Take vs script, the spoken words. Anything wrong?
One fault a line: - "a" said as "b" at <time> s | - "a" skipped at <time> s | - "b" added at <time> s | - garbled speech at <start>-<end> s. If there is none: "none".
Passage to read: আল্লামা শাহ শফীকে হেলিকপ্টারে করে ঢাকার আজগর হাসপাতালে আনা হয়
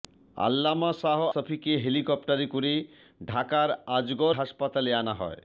none